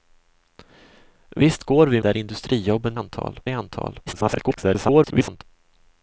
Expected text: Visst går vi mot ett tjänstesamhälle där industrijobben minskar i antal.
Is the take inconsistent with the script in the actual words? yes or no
yes